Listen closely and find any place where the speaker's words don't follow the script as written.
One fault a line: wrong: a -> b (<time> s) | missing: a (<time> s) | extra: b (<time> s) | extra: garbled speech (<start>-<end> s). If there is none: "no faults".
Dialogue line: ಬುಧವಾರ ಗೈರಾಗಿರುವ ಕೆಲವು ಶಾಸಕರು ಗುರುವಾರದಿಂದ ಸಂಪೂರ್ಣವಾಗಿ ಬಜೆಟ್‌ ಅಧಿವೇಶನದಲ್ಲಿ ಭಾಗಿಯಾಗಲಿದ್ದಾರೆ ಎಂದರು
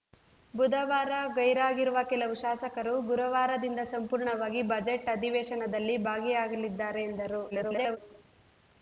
extra: garbled speech (7.5-8.0 s)